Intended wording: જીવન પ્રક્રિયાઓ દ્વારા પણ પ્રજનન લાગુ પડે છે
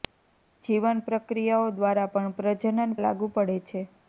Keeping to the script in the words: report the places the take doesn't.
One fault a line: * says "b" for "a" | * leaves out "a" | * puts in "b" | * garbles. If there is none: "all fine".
all fine